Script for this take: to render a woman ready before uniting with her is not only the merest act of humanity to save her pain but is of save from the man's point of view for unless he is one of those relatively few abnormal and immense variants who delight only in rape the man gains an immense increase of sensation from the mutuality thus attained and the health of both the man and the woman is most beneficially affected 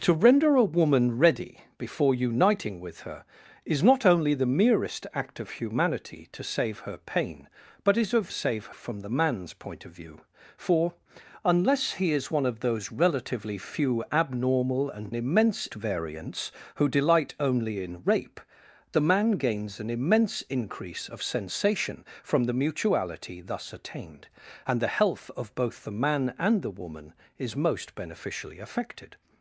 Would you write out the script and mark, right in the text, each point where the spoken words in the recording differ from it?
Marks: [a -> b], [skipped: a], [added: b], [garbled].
to render a woman ready before uniting with her is not only the merest act of humanity to save her pain but is of save from the man's point of view for unless he is one of those relatively few abnormal and immense variants who delight only in rape the man gains an immense increase of sensation from the mutuality thus attained and the health of both the man and the woman is most beneficially affected